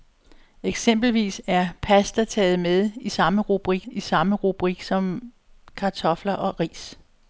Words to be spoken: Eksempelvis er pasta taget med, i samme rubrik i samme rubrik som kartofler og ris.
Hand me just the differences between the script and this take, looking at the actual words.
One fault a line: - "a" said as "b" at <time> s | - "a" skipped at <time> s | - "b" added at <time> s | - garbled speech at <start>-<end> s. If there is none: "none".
none